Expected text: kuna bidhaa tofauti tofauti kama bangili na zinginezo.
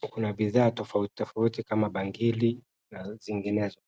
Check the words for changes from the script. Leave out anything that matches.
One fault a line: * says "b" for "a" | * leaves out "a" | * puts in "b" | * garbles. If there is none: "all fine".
all fine